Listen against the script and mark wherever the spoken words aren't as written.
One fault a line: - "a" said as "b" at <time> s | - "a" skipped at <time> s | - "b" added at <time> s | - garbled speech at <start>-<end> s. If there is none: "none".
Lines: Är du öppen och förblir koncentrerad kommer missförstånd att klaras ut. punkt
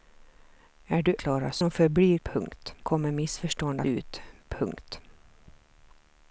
- "öppen" said as "klaras" at 1.2 s
- "koncentrerad" said as "punkt" at 2.2 s
- "att klaras" skipped at 3.8 s